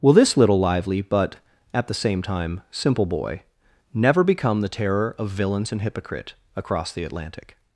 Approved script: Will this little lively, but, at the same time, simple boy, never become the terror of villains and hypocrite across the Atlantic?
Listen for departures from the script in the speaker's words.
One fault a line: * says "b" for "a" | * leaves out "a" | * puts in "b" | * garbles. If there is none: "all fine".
all fine